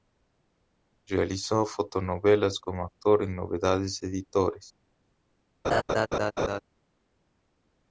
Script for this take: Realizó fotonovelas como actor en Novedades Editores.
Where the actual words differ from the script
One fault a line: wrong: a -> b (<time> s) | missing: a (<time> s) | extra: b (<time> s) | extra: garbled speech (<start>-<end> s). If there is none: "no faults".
no faults